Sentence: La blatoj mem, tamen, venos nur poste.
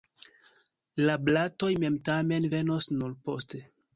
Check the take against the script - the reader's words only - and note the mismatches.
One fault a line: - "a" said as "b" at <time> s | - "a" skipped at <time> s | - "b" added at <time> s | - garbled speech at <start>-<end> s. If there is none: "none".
none